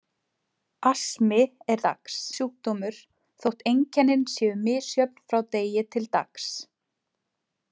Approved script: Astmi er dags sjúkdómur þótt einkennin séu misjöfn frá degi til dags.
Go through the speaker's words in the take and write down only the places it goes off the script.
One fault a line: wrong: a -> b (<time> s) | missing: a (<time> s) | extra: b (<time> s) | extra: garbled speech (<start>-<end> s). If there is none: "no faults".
no faults